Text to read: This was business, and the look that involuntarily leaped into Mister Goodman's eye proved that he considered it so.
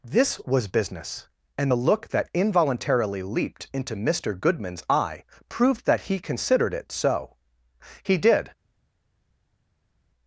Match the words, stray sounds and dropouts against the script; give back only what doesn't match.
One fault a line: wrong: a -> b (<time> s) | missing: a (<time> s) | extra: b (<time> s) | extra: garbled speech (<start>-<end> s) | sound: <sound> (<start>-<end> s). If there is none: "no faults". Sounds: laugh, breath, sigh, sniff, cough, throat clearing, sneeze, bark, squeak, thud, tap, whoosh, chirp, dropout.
extra: He did (8.0 s)